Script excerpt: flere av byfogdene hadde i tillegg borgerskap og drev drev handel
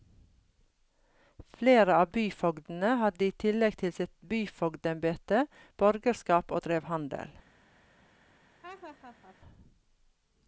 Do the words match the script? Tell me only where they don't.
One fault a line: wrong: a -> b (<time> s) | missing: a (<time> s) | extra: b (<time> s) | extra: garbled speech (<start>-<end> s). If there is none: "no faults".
extra: til sitt byfogdembete (3.8 s)
missing: drev (6.9 s)